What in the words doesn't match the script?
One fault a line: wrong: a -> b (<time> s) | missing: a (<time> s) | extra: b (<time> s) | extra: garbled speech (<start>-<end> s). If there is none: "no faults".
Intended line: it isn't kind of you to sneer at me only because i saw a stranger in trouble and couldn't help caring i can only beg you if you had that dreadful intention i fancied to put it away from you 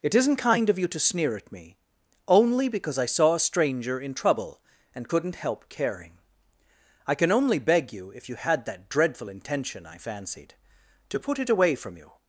no faults